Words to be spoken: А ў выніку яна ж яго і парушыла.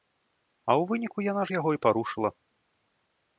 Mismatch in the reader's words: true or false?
false